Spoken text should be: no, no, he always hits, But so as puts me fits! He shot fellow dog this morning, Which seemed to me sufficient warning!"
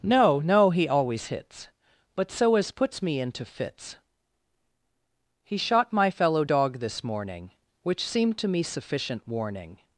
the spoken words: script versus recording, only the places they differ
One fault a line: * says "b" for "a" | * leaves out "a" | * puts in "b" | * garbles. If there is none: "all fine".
* puts in "into"
* puts in "my"